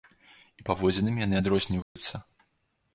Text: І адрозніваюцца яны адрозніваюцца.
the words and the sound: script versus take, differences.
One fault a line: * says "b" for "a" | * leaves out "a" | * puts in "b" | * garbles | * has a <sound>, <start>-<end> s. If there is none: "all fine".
* says "паводзінамі" for "адрозніваюцца"
* has a dropout, 1.8-2.0 s